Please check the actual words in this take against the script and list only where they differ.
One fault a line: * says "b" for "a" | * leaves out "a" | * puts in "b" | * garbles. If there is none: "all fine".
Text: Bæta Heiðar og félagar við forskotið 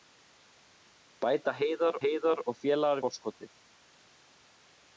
* puts in "Heiðar"
* leaves out "við"